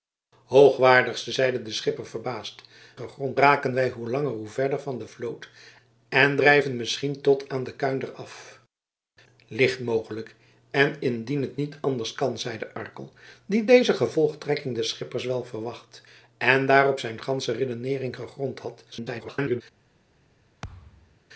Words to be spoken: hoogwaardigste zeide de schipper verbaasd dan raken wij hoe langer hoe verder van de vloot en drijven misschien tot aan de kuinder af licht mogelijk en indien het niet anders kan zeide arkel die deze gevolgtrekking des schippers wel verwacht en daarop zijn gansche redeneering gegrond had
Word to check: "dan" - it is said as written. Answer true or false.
false